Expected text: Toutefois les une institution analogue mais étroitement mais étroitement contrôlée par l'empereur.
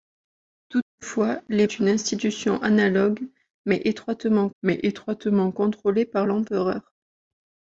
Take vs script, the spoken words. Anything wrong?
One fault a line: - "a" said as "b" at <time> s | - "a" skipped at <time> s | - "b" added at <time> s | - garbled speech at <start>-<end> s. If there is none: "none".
none